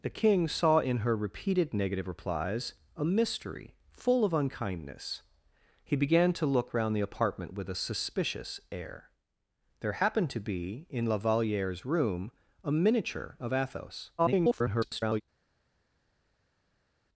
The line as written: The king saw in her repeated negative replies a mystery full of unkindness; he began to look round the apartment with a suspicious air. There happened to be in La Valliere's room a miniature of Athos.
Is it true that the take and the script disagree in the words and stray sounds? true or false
true